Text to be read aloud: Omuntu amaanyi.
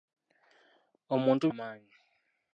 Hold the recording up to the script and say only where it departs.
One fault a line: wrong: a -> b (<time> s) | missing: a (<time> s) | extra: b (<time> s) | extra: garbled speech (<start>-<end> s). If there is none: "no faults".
no faults